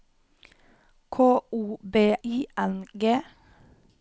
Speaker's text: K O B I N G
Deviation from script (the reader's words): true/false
false